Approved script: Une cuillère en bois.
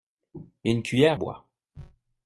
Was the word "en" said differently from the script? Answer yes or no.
yes